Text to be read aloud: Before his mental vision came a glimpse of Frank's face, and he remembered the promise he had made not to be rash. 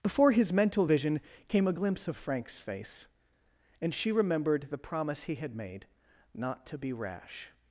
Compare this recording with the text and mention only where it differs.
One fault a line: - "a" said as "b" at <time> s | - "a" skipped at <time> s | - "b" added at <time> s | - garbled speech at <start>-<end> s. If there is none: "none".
- "he" said as "she" at 3.9 s